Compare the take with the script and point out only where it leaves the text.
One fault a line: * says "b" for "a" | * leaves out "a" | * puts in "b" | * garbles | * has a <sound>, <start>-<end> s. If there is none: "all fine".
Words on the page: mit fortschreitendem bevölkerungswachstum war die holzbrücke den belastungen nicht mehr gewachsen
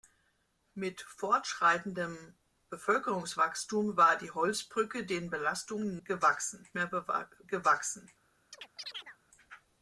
* says "gewachsen" for "nicht"
* has a chirp, 8.5-9.2 s